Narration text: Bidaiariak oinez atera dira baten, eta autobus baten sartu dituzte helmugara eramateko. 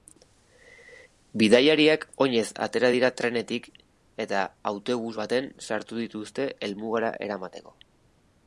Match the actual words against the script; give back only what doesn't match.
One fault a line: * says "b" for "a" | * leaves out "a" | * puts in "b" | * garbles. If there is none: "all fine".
* says "trenetik" for "baten"